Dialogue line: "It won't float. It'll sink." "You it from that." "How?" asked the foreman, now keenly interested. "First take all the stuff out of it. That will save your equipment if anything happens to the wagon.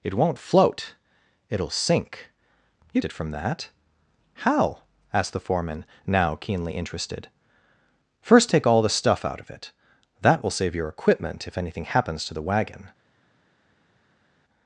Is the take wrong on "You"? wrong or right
right